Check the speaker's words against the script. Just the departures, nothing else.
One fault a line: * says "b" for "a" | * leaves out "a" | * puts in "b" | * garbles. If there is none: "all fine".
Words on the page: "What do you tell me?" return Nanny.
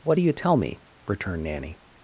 * says "returned" for "return"